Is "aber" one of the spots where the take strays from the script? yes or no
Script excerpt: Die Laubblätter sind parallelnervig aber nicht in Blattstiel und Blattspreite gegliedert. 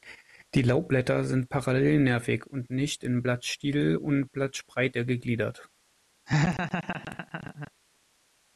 yes